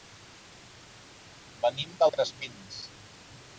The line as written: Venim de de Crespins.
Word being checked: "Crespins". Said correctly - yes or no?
yes